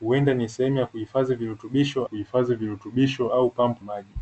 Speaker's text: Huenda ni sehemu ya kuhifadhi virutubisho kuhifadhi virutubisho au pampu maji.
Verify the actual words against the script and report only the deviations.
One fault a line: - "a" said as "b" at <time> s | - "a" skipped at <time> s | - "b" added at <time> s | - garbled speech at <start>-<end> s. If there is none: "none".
none